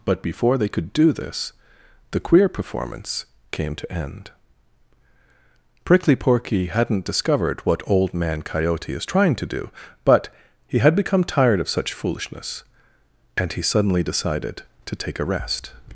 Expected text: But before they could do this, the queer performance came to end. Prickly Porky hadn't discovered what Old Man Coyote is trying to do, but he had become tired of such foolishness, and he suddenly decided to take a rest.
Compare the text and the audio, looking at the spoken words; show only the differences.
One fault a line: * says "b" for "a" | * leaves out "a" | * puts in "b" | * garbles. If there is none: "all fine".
all fine